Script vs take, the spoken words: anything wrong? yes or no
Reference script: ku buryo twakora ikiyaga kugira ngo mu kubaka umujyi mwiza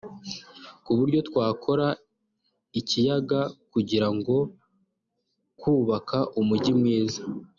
yes